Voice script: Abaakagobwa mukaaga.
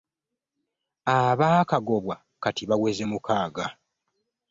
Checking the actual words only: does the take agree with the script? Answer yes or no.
no